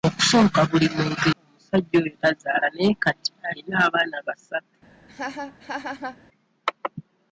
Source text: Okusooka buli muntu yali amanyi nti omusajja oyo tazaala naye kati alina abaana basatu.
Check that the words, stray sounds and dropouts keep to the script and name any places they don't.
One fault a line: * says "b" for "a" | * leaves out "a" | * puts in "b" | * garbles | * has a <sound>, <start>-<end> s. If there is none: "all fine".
* leaves out "yali amanyi nti"
* has a laugh, 5.1-6.2 s